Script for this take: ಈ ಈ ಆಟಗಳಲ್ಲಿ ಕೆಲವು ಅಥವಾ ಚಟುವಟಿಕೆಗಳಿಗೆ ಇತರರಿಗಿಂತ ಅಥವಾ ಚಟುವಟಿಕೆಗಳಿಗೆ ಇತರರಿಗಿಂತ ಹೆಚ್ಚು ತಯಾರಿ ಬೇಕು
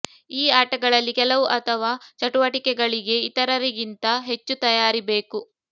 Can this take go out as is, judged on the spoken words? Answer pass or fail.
fail